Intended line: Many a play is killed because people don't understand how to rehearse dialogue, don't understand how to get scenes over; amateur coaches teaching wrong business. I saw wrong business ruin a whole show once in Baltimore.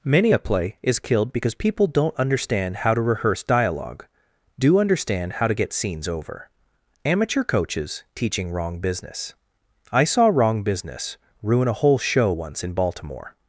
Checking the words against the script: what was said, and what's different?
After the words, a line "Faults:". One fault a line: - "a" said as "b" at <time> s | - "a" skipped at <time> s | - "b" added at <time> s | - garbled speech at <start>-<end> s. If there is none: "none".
Many a play is killed because people don't understand how to rehearse dialogue, do understand how to get scenes over; amateur coaches teaching wrong business. I saw wrong business ruin a whole show once in Baltimore.
Faults:
- "don't" said as "do" at 4.6 s